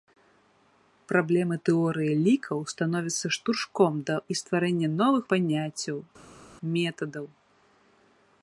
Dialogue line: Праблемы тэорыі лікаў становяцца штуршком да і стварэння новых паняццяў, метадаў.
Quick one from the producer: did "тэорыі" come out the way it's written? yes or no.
yes